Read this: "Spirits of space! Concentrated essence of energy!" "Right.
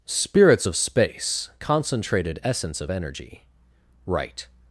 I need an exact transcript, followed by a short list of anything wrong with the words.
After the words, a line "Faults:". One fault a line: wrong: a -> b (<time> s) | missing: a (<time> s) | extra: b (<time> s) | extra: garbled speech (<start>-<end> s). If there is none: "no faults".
"Spirits of space! Concentrated essence of energy!" "Right.
Faults:
no faults